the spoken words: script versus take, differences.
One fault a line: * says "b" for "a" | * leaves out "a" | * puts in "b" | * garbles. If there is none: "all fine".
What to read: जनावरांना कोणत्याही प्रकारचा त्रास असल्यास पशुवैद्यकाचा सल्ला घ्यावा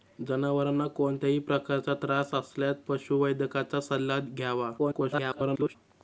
* garbles